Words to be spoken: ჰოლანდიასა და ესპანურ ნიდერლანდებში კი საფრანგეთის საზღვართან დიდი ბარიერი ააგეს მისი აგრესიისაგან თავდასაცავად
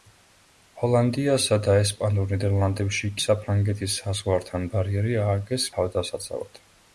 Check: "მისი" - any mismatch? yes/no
yes